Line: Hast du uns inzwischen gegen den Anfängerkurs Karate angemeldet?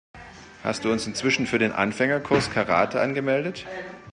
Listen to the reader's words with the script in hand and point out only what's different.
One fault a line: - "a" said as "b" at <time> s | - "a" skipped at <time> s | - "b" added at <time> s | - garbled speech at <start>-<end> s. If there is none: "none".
- "gegen" said as "für" at 1.5 s